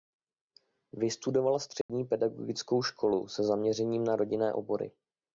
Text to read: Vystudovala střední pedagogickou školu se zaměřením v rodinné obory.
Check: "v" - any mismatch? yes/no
yes